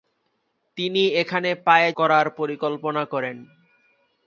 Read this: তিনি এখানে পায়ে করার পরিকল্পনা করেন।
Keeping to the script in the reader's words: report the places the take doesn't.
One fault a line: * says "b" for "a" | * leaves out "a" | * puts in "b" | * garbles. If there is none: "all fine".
all fine